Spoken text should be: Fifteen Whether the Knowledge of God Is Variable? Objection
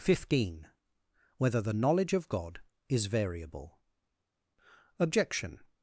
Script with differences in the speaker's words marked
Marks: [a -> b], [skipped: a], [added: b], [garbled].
Fifteen Whether the Knowledge of God Is Variable? Objection